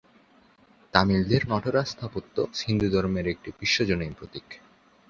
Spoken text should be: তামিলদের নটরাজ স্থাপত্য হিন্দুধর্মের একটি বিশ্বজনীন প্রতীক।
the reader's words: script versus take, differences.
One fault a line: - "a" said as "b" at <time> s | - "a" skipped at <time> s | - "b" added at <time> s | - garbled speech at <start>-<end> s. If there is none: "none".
none